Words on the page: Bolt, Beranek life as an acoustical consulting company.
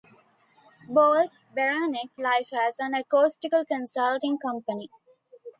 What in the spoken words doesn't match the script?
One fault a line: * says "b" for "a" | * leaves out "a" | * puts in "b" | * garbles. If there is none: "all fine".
all fine